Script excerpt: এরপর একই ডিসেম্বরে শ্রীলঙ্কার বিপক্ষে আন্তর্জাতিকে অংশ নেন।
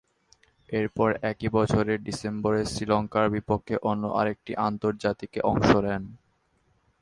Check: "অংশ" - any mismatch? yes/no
no